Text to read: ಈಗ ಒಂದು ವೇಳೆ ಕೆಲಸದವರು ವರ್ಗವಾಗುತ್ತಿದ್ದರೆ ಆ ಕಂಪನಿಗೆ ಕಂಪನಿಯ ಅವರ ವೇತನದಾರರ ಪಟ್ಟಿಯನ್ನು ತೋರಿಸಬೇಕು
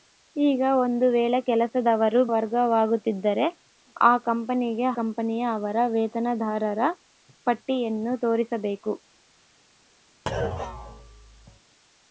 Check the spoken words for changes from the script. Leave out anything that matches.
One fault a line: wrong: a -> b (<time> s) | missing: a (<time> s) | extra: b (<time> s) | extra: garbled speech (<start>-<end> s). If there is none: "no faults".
no faults